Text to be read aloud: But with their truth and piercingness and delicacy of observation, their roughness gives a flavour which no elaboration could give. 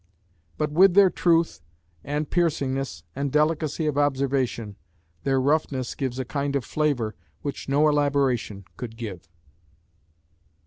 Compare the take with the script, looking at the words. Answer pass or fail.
fail